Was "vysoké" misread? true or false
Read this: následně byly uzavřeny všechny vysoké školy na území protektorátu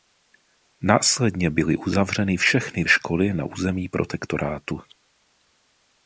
true